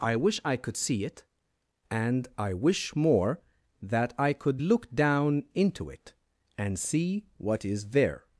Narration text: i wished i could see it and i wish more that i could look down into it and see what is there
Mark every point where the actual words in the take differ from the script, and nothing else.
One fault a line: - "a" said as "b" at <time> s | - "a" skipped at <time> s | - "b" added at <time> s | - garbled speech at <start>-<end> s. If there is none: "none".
- "wished" said as "wish" at 0.1 s